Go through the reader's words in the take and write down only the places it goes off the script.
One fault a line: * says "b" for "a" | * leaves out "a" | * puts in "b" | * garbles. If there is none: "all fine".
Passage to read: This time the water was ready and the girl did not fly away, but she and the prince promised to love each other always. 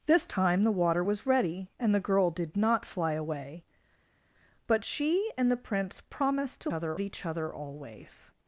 * says "other" for "love"